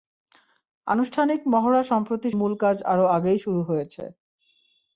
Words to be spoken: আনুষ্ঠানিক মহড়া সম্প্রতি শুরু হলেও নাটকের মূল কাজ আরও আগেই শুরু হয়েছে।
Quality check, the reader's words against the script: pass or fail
fail